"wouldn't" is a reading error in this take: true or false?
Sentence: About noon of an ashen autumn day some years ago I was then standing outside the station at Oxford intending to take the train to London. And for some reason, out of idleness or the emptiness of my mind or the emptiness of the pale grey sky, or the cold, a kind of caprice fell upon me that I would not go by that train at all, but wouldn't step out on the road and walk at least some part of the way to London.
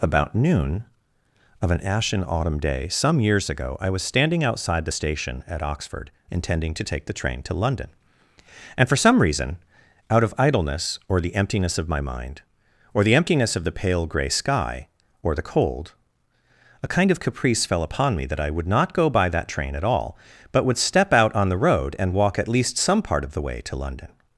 true